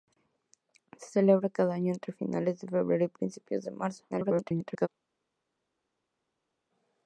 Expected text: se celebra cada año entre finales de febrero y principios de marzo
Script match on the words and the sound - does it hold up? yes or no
no